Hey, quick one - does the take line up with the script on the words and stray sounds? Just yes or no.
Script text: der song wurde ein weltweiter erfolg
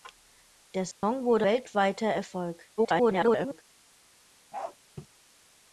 no